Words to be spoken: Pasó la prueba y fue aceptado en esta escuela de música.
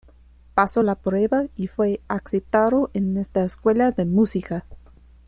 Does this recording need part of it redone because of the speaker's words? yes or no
no